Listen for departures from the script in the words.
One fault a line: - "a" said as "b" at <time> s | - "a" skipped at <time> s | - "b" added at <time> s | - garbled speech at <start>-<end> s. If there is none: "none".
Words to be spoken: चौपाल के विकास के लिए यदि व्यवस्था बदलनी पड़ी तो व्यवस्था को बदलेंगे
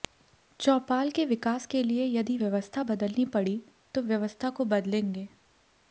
none